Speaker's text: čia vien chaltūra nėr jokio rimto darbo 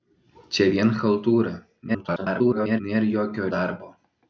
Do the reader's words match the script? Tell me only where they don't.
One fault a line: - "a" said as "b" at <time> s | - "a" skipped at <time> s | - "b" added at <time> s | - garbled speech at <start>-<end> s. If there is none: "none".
- garbled speech at 1.9-2.8 s
- "rimto" skipped at 3.5 s